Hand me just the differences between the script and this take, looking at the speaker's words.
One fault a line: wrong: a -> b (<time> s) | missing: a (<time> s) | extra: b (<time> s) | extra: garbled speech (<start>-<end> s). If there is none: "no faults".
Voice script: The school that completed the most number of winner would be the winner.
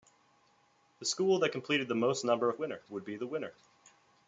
no faults